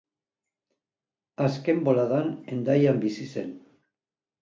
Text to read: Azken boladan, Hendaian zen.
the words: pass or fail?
fail